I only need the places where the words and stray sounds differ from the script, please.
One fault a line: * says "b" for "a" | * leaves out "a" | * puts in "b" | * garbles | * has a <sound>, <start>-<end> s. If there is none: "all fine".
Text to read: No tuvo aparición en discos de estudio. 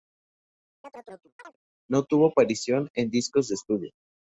* has a chirp, 0.8-1.6 s